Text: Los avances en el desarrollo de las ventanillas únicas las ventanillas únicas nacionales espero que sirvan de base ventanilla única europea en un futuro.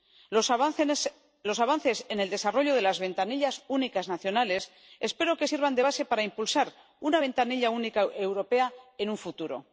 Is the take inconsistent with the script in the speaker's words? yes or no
yes